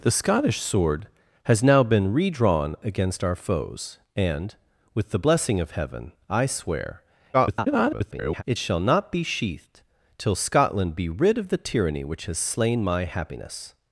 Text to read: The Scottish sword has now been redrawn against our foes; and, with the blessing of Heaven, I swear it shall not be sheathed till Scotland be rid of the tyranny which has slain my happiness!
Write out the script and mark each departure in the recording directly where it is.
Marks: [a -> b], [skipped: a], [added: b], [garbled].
The Scottish sword has now been redrawn against our foes; and, with the blessing of Heaven, I swear [garbled] it shall not be sheathed till Scotland be rid of the tyranny which has slain my happiness!